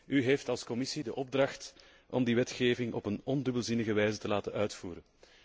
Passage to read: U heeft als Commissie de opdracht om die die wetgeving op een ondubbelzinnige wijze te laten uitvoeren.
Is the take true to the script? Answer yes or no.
no